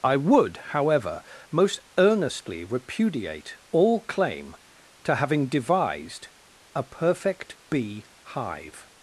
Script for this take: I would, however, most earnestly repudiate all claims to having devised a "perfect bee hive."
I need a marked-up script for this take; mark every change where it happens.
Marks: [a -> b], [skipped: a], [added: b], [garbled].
I would, however, most earnestly repudiate all [claims -> claim] to having devised a "perfect bee hive."